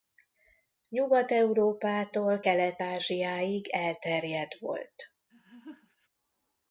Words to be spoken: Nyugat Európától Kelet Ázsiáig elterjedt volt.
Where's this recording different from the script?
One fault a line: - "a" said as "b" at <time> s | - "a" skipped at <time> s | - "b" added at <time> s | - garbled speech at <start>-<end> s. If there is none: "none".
none